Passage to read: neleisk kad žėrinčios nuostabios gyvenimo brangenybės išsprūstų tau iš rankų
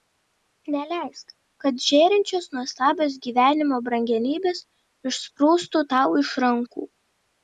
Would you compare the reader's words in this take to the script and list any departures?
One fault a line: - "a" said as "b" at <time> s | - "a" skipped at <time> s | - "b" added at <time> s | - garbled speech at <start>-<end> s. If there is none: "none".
none